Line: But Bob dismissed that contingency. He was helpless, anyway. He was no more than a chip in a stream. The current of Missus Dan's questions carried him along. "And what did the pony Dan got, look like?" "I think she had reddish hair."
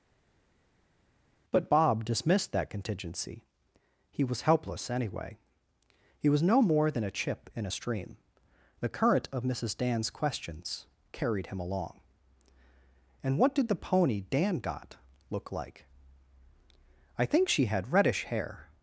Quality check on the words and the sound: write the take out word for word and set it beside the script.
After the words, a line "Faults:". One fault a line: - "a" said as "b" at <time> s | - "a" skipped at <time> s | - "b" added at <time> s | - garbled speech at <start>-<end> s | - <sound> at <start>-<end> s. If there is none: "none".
But Bob dismissed that contingency. He was helpless, anyway. He was no more than a chip in a stream. The current of Missus Dan's questions carried him along. "And what did the pony Dan got, look like?" "I think she had reddish hair."
Faults:
none